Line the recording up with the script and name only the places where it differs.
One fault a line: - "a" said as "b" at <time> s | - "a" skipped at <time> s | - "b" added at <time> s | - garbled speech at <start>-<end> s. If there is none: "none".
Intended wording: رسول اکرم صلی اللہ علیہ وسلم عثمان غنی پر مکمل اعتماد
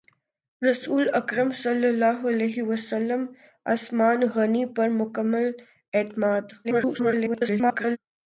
- garbled speech at 6.6-8.0 s